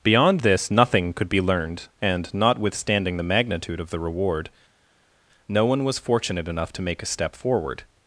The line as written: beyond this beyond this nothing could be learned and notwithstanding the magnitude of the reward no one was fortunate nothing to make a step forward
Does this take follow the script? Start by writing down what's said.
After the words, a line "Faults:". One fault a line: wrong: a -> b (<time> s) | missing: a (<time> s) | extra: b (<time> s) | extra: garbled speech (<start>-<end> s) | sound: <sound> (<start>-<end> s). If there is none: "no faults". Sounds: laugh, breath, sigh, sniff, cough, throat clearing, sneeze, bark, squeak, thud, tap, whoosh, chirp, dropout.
beyond this nothing could be learned and notwithstanding the magnitude of the reward no one was fortunate enough to make a step forward
Faults:
missing: beyond this (0.7 s)
wrong: nothing -> enough (6.5 s)